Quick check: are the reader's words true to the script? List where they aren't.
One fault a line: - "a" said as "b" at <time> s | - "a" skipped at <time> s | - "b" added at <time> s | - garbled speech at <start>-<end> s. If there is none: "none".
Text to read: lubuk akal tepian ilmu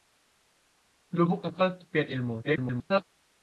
- garbled speech at 2.4-3.0 s